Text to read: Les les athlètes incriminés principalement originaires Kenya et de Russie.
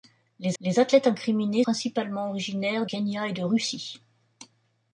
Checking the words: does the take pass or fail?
pass